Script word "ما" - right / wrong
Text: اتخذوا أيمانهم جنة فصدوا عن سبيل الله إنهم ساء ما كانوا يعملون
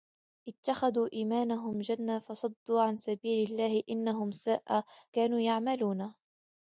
wrong